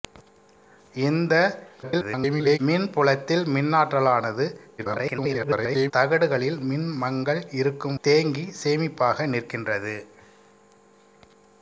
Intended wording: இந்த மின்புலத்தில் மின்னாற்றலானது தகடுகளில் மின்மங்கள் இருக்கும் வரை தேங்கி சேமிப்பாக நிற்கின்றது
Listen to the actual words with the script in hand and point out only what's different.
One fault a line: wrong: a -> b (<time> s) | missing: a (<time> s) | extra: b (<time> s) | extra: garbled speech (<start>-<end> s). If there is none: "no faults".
extra: garbled speech (1.8-2.6 s)
extra: garbled speech (4.8-5.9 s)
missing: வரை (8.0 s)